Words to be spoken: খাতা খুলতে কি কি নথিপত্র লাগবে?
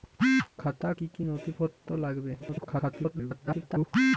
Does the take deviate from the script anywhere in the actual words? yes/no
yes